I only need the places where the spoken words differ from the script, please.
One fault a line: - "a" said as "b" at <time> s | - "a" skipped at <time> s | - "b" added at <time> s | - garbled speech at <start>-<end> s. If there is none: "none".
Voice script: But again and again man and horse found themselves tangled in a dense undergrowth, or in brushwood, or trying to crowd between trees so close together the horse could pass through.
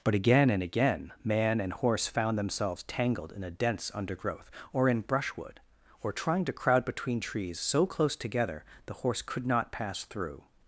- "not" added at 9.4 s